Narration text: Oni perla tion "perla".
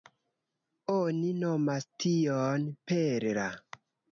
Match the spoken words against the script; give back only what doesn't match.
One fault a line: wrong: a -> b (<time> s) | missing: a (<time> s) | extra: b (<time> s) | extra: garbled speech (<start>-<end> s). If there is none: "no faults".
wrong: perla -> nomas (1.4 s)